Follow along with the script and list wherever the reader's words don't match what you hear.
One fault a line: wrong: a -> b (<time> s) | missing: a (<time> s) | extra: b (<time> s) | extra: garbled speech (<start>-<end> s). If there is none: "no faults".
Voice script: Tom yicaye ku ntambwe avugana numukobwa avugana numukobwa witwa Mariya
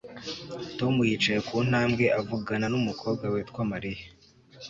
missing: avugana numukobwa (3.2 s)